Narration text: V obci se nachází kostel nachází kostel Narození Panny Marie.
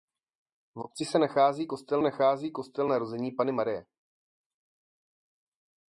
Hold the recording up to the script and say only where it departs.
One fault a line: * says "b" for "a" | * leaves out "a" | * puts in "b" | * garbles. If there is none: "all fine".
all fine